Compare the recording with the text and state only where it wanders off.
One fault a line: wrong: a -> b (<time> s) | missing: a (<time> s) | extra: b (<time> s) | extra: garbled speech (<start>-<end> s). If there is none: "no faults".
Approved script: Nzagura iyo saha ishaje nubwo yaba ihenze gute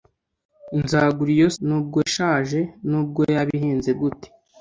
wrong: saha -> nubwo (1.7 s)